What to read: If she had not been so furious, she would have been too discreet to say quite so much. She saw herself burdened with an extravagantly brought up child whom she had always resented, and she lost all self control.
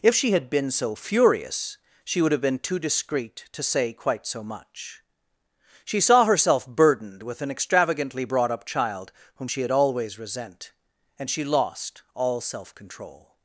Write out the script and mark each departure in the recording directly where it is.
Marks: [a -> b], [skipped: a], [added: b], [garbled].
If she had [skipped: not] been so furious, she would have been too discreet to say quite so much. She saw herself burdened with an extravagantly brought up child whom she had always [resented, -> resent] and she lost all self control.